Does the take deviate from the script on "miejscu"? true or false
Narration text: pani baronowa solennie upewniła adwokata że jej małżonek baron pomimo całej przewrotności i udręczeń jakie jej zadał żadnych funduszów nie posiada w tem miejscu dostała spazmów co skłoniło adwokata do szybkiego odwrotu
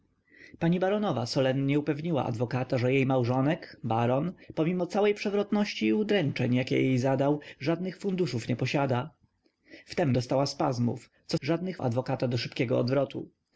true